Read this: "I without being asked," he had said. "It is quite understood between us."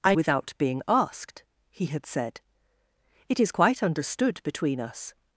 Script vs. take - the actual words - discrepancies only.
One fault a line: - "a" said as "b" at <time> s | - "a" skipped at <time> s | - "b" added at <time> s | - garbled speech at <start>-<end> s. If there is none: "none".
none